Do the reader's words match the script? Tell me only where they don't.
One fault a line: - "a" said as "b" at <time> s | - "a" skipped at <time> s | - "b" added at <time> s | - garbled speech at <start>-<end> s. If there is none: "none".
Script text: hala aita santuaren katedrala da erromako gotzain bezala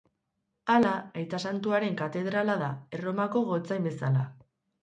none